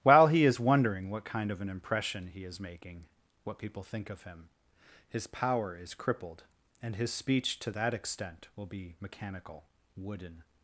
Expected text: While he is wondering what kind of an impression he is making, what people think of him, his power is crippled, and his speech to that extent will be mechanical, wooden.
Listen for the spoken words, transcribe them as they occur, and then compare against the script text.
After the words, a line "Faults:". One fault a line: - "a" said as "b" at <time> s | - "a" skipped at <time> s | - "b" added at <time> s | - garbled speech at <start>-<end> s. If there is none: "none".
While he is wondering what kind of an impression he is making, what people think of him, his power is crippled, and his speech to that extent will be mechanical, wooden.
Faults:
none